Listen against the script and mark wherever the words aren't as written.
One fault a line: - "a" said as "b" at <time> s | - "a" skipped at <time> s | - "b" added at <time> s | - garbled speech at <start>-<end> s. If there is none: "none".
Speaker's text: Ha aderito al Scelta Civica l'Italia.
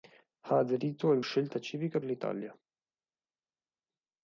none